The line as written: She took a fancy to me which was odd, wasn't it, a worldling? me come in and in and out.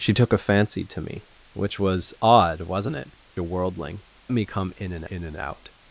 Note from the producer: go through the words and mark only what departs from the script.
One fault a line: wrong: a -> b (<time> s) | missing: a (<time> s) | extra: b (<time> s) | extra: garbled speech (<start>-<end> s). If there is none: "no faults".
no faults